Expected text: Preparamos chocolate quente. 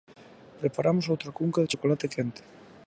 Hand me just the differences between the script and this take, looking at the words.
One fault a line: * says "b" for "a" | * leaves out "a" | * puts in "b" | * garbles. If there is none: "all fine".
* puts in "outra cunca de"